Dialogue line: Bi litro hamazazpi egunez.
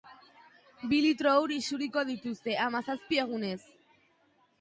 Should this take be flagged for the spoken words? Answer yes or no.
yes